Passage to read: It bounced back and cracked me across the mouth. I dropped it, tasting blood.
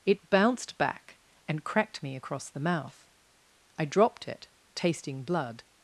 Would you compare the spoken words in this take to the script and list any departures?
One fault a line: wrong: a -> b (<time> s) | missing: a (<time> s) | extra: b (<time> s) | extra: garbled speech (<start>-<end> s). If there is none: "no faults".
no faults